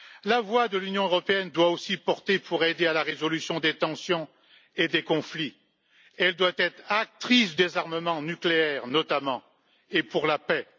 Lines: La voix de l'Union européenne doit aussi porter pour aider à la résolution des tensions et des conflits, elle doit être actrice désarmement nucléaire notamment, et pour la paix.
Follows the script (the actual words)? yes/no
yes